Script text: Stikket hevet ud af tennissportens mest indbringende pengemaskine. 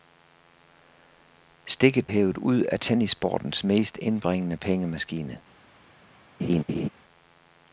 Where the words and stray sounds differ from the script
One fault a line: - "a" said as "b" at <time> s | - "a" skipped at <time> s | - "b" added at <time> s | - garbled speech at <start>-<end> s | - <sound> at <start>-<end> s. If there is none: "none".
- laugh at 6.4-6.9 s